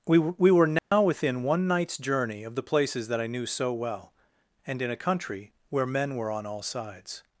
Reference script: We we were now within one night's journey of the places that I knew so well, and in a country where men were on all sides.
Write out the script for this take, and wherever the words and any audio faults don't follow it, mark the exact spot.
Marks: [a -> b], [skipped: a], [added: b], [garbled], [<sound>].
We we were now [dropout] within one night's journey of the places that I knew so well, and in a country where men were on all sides.